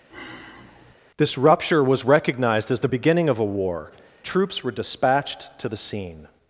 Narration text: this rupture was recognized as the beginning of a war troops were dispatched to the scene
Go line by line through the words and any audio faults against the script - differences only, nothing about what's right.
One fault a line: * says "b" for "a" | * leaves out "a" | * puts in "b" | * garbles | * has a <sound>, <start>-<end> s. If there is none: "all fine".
* has a sigh, 0.1-0.9 s